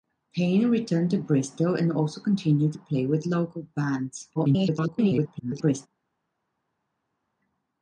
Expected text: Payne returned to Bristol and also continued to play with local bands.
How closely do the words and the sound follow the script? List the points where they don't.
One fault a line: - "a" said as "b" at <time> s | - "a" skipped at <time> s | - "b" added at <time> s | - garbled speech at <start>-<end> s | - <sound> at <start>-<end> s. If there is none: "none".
- garbled speech at 4.4-5.9 s